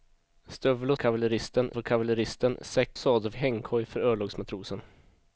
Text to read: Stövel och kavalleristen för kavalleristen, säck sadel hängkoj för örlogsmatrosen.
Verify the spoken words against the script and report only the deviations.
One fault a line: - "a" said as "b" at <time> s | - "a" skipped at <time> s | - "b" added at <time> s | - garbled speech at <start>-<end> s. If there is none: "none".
none